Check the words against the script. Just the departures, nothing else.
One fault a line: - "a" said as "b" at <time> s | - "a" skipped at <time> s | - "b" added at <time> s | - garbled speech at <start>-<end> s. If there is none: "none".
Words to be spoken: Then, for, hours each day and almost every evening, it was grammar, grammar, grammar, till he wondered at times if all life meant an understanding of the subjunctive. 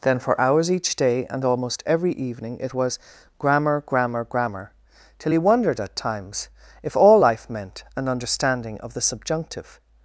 none